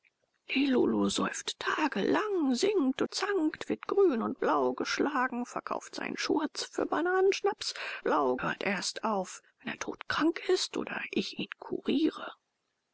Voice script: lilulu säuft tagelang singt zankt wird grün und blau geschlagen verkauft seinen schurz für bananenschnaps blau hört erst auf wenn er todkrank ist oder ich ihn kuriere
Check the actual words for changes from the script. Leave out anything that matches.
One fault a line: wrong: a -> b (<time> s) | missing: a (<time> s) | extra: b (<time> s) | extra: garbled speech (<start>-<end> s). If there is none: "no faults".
no faults